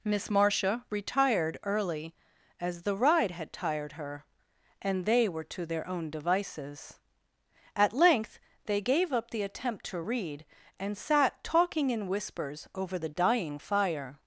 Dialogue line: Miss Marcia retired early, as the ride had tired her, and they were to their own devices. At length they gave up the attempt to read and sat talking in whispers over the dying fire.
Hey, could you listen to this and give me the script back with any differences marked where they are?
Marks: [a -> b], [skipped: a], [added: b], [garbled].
Miss Marcia retired early, as the ride had tired her, and they were to their own devices. At length they gave up the attempt to read and sat talking in whispers over the dying fire.